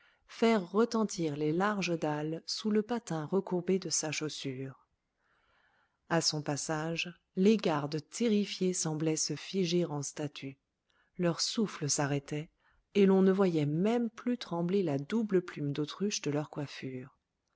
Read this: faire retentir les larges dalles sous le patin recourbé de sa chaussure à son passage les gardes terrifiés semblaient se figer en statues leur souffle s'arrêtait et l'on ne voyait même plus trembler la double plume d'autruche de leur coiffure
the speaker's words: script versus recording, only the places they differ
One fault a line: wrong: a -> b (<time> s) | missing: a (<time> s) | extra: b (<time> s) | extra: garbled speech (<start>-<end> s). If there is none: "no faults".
no faults